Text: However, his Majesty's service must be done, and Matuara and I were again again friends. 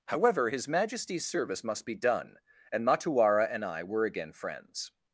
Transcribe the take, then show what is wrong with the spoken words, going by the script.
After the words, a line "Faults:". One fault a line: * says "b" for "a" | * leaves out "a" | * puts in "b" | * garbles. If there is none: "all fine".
However, his Majesty's service must be done, and Matuara and I were again friends.
Faults:
* leaves out "again"